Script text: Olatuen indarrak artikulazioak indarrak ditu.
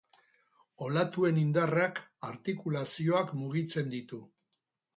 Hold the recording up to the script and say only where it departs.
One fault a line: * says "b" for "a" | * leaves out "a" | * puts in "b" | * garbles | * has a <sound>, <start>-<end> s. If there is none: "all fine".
* says "mugitzen" for "indarrak"